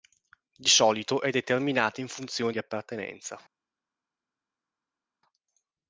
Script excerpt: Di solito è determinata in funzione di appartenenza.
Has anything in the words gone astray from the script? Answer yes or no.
no